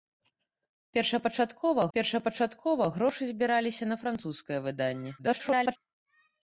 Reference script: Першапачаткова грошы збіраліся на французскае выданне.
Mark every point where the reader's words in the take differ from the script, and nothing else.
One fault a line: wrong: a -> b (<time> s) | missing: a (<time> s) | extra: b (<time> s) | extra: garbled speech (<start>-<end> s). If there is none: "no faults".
extra: першапачаткова (2.0 s)
extra: garbled speech (5.2-5.8 s)